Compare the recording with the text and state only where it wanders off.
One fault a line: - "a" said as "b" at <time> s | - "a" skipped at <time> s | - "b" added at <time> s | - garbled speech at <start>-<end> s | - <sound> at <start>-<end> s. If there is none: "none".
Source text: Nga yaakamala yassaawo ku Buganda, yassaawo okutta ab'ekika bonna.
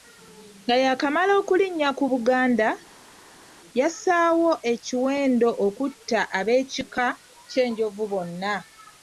- "yassaawo" said as "okulinnya" at 1.4 s
- "ekiwendo" added at 4.7 s
- "ky'Enjovu" added at 7.5 s